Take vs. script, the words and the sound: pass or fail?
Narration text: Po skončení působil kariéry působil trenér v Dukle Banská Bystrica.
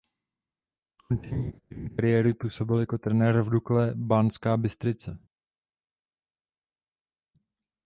fail